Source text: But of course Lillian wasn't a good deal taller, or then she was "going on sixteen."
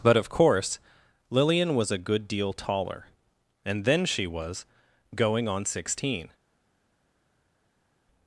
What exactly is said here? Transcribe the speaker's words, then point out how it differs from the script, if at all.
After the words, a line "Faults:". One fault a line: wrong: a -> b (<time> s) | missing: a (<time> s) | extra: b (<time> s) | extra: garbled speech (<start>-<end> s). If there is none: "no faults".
But of course Lillian was a good deal taller, and then she was "going on sixteen."
Faults:
wrong: wasn't -> was (1.8 s)
wrong: or -> and (3.6 s)